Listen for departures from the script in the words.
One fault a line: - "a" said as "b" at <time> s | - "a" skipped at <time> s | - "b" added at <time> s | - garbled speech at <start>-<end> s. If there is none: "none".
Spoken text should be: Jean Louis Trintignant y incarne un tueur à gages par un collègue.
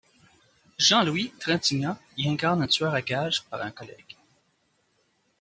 none